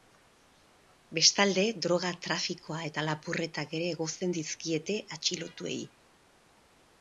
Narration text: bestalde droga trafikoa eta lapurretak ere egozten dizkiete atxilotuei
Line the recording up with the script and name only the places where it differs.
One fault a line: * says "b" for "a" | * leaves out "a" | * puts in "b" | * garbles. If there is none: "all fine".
all fine